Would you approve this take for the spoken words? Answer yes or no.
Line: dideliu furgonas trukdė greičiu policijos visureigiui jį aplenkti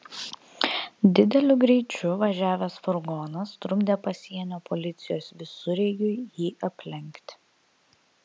no